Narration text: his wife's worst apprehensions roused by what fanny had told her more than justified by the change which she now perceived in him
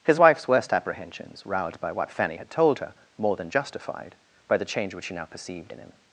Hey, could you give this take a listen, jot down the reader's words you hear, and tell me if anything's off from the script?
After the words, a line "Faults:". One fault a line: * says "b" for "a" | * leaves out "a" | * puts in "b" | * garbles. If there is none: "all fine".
his wife's worst apprehensions roused by what fanny had told her more than justified by the change which she now perceived in him
Faults:
all fine